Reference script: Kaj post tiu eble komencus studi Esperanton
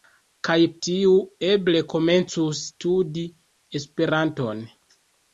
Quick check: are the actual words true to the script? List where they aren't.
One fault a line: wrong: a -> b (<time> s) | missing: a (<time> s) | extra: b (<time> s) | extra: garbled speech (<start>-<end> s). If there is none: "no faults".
missing: post (0.6 s)